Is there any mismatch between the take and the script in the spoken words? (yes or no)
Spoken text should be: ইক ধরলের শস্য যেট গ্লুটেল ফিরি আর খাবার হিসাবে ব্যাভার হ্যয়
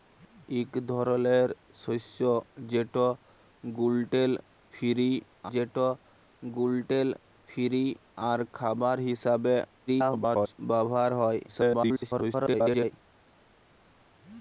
yes